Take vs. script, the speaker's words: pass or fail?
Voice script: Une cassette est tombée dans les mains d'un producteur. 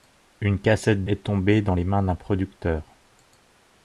pass